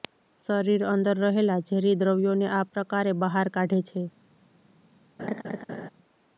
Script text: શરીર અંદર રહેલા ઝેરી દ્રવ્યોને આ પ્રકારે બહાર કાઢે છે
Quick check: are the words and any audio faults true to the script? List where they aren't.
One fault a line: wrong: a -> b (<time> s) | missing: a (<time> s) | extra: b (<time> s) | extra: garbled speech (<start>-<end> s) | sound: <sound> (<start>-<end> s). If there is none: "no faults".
sound: laugh (5.2-5.9 s)